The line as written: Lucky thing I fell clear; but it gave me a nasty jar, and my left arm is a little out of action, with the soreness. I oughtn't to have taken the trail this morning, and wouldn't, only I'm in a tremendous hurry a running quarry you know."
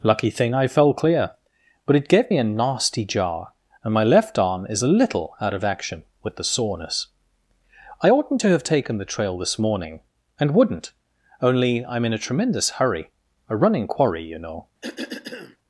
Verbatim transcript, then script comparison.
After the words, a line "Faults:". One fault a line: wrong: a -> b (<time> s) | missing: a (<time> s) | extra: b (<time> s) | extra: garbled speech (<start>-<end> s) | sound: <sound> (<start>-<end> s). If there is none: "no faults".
Lucky thing I fell clear; but it gave me a nasty jar, and my left arm is a little out of action, with the soreness. I oughtn't to have taken the trail this morning, and wouldn't, only I'm in a tremendous hurry a running quarry you know."
Faults:
sound: cough (14.8-15.6 s)